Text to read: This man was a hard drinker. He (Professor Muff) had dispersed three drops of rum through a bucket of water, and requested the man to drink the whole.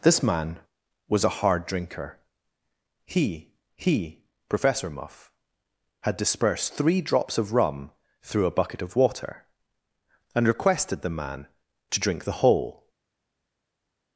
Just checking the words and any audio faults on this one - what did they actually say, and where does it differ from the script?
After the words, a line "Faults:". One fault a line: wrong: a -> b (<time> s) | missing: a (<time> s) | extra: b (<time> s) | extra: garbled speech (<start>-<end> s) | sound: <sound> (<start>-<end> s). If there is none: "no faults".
This man was a hard drinker. He he (Professor Muff) had dispersed three drops of rum through a bucket of water, and requested the man to drink the whole.
Faults:
extra: he (3.8 s)